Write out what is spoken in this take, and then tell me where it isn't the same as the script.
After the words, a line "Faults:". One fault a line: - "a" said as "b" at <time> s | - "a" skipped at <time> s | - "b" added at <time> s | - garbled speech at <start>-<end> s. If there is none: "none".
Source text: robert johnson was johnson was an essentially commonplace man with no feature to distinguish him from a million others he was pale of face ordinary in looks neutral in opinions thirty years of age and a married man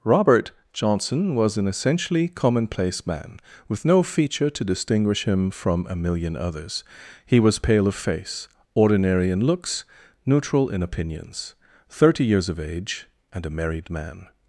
robert johnson was an essentially commonplace man with no feature to distinguish him from a million others he was pale of face ordinary in looks neutral in opinions thirty years of age and a married man
Faults:
- "johnson was" skipped at 1.6 s